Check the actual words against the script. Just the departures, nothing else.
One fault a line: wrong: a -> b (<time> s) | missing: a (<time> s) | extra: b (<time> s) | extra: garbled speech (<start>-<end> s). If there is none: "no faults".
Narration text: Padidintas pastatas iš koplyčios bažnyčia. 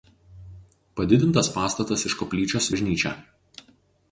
no faults